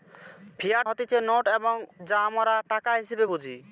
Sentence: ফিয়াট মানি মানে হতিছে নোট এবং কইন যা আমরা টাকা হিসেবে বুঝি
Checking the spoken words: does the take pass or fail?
fail